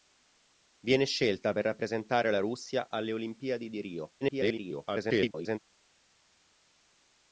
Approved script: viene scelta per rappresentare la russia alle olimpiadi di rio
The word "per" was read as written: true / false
true